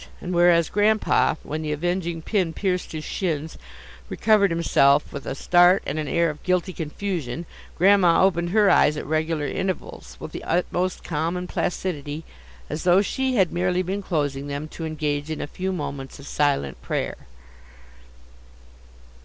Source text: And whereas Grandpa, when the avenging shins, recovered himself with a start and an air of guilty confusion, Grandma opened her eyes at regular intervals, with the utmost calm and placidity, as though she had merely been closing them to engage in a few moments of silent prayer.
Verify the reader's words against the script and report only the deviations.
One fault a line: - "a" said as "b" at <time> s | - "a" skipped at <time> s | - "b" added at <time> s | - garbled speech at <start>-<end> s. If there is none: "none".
- "pin pierced his" added at 2.2 s